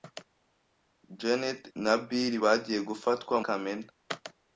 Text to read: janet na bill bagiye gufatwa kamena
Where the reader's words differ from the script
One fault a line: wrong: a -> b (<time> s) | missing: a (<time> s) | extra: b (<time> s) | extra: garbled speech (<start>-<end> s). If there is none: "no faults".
no faults